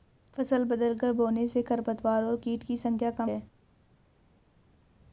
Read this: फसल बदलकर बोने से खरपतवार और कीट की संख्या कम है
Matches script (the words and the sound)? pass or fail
pass